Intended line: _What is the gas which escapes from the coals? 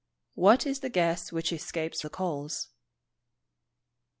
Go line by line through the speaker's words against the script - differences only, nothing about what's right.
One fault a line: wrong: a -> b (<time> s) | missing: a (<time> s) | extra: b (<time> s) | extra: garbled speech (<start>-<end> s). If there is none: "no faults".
missing: from (2.0 s)